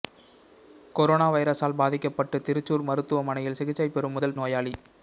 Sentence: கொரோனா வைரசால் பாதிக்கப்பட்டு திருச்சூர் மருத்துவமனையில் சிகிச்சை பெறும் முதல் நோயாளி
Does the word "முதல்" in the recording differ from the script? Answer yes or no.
no